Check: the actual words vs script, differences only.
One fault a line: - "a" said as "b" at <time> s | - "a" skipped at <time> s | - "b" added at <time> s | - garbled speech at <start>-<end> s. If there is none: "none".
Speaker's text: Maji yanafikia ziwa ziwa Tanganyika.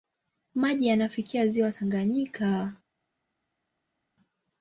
- "ziwa" skipped at 1.7 s